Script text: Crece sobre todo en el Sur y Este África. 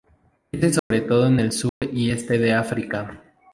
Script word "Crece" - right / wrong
right